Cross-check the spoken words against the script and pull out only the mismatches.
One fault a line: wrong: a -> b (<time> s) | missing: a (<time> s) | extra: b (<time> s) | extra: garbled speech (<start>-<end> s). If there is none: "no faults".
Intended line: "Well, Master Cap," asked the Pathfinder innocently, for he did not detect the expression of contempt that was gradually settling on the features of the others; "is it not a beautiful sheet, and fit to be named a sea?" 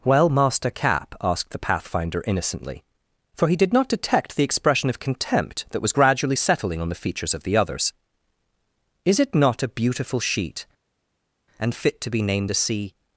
no faults